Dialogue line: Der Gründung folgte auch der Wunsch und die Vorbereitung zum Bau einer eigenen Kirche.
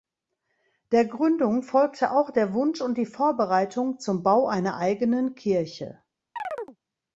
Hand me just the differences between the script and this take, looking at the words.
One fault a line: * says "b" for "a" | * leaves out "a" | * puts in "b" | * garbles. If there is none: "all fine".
all fine